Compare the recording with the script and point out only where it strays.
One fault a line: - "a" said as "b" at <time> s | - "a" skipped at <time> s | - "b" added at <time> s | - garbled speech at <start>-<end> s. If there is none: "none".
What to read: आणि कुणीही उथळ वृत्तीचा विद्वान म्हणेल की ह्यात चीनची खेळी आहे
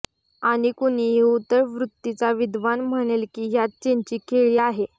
none